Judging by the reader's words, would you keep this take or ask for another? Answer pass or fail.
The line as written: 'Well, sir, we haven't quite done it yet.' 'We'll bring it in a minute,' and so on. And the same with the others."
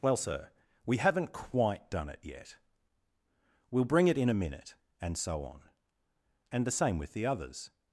pass